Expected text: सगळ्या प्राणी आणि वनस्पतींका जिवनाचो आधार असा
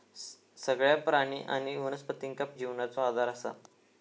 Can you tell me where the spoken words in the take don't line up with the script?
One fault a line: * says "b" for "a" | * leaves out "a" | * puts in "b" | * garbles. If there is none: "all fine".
all fine